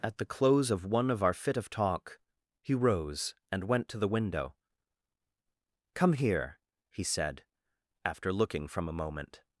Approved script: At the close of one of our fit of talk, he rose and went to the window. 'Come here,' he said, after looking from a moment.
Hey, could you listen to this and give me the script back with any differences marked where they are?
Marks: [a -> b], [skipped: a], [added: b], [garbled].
At the close of one of our fit of talk, he rose and went to the window. 'Come here,' he said, after looking from a moment.